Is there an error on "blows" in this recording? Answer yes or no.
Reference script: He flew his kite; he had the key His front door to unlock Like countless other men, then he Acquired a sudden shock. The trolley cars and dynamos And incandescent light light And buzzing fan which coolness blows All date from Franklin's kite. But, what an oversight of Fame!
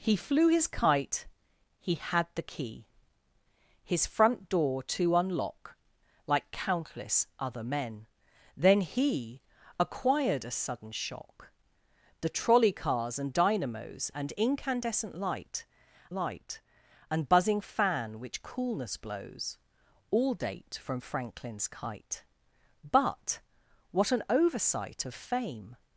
no